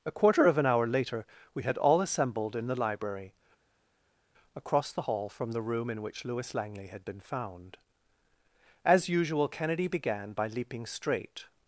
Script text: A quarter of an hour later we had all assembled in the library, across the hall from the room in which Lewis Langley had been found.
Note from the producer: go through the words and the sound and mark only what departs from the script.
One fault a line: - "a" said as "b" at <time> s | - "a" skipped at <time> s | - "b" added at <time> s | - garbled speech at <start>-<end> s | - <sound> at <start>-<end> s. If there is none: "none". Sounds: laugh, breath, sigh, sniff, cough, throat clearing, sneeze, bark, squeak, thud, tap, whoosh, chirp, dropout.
- "As usual Kennedy began by leaping straight" added at 8.8 s